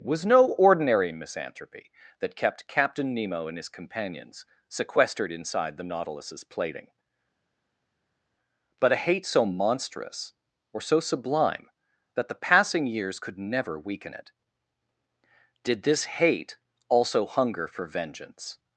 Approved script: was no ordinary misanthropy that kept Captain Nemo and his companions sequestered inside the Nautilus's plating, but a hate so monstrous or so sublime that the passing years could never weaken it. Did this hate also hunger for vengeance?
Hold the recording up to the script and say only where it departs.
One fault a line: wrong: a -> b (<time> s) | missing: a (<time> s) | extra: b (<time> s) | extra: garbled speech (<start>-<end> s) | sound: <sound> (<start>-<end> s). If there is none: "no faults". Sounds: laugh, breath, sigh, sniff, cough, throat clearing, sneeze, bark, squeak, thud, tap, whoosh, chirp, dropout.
no faults